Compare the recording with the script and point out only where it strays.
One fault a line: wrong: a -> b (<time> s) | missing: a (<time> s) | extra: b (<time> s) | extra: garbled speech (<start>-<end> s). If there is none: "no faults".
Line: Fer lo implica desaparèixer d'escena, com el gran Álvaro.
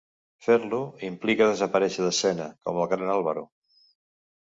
no faults